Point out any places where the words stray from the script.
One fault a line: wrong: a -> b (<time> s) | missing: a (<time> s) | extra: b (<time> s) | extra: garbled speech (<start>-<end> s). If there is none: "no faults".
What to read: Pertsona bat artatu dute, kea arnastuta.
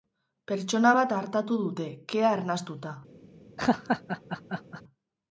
no faults